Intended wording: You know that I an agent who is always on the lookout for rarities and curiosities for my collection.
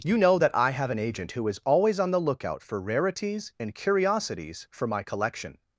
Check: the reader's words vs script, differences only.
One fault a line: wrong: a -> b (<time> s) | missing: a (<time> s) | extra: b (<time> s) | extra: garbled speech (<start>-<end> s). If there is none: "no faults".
extra: have (0.7 s)